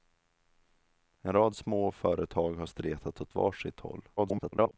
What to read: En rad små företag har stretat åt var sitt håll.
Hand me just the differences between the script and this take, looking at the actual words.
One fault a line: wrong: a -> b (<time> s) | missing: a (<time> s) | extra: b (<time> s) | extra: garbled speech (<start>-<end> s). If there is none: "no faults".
extra: garbled speech (4.2-4.7 s)